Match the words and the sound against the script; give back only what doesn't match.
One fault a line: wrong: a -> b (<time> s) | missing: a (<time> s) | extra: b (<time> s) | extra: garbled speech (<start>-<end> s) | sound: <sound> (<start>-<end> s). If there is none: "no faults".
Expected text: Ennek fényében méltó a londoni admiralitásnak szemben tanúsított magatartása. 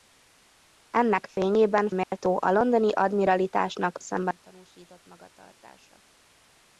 sound: dropout (2.0-2.1 s)